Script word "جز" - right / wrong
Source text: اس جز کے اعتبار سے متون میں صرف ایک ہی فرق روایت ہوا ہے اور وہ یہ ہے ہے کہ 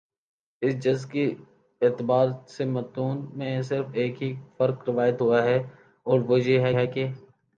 right